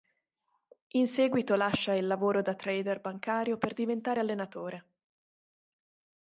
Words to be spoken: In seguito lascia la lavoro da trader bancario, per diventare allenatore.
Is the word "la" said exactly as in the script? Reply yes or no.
no